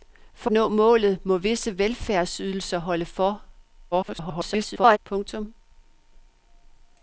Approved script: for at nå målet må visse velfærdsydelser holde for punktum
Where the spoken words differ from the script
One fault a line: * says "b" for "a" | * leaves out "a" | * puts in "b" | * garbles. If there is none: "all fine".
* leaves out "at"
* garbles